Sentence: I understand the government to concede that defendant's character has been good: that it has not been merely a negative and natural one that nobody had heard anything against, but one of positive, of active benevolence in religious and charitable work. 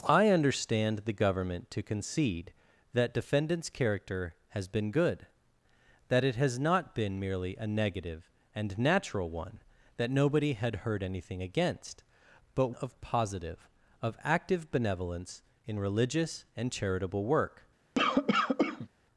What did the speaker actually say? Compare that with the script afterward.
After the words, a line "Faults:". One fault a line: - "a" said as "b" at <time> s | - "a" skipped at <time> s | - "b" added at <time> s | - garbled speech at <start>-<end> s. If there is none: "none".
I understand the government to concede that defendant's character has been good: that it has not been merely a negative and natural one that nobody had heard anything against, but of positive, of active benevolence in religious and charitable work.
Faults:
- "one" skipped at 12.7 s